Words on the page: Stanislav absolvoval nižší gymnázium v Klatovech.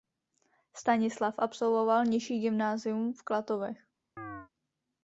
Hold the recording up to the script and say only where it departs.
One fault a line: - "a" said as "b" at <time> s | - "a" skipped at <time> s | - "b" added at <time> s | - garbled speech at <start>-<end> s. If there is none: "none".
none